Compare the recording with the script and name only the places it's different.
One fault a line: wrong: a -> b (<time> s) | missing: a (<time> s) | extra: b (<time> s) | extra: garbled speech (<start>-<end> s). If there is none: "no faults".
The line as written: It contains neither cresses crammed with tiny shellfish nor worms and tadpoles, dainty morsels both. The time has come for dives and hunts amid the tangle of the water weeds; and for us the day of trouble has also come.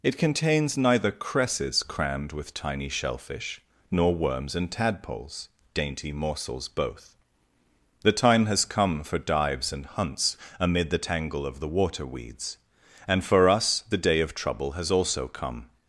no faults